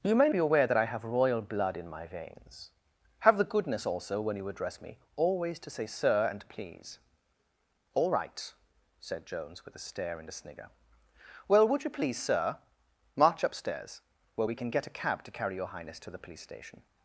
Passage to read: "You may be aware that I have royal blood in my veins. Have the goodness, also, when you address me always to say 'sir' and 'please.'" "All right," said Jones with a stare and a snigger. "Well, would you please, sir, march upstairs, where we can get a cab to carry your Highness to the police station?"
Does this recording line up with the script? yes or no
yes